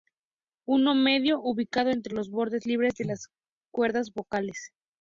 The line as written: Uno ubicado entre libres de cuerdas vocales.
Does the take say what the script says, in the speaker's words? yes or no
no